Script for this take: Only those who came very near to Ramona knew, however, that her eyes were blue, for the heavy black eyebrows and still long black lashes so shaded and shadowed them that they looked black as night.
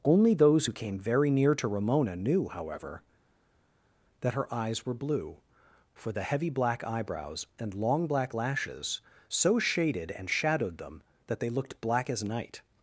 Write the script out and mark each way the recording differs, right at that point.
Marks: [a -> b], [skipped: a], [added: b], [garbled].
Only those who came very near to Ramona knew, however, that her eyes were blue, for the heavy black eyebrows and [skipped: still] long black lashes so shaded and shadowed them that they looked black as night.